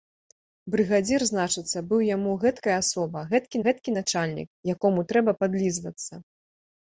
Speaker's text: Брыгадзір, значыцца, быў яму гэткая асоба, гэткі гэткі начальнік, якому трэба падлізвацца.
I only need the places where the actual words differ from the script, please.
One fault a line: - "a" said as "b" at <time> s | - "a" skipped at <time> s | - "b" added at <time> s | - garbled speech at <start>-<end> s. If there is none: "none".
none